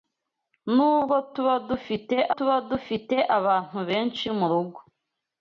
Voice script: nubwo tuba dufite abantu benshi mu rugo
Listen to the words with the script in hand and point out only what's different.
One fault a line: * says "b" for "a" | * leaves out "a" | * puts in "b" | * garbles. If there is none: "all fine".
* puts in "tuba dufite"